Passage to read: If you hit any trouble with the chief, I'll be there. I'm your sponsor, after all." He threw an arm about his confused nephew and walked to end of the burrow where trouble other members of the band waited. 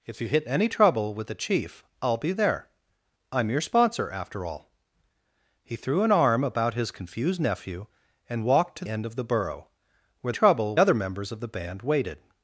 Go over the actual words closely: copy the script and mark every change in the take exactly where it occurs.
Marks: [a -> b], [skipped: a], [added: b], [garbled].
If you hit any trouble with the chief, I'll be there. I'm your sponsor, after all." He threw an arm about his confused nephew and walked to end of the burrow where trouble other members of the band waited.